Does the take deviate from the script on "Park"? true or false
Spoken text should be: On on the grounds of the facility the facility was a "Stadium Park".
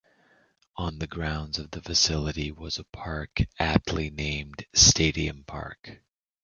false